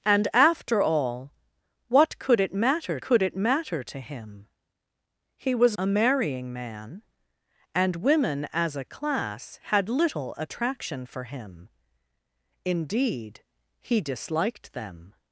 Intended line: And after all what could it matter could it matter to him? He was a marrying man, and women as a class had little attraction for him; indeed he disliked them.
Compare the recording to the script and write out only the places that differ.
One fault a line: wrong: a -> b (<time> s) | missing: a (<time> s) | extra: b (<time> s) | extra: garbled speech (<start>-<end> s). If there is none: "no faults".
no faults